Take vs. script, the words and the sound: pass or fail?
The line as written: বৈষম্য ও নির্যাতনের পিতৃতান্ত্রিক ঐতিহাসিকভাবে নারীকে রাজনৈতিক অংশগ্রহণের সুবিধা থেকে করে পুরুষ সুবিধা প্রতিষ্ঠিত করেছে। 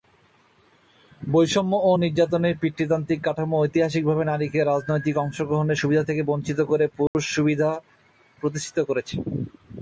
fail